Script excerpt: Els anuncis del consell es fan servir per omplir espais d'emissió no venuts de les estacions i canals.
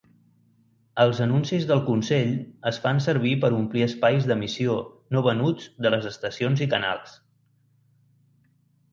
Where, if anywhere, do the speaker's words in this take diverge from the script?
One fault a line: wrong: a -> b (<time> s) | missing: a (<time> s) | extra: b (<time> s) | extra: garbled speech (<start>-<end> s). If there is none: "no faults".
no faults